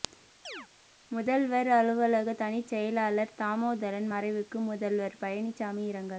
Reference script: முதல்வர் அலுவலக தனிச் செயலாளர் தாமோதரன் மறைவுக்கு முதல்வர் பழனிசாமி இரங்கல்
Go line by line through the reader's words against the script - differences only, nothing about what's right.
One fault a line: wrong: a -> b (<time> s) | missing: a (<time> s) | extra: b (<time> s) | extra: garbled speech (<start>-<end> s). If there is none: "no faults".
no faults